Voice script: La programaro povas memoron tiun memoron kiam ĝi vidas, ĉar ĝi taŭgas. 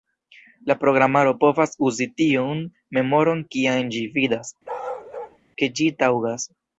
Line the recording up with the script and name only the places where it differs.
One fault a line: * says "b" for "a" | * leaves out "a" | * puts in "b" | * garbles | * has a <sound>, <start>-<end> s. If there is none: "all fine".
* says "uzi" for "memoron"
* has a bark, 4.6-5.4 s
* says "ke" for "ĉar"